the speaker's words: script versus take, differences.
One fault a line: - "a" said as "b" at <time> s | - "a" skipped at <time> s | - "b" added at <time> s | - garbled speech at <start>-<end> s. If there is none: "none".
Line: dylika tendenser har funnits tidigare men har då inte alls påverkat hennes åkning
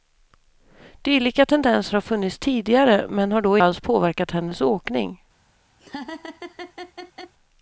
- "inte" skipped at 3.6 s